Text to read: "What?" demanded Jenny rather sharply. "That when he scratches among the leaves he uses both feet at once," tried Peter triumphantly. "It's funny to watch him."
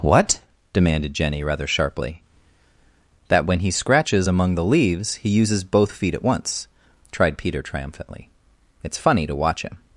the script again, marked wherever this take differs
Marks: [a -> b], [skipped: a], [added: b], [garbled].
"What?" demanded Jenny rather sharply. "That when he scratches among the leaves he uses both feet at once," tried Peter triumphantly. "It's funny to watch him."